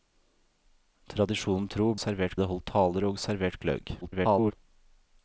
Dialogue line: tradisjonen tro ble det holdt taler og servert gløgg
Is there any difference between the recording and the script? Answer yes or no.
yes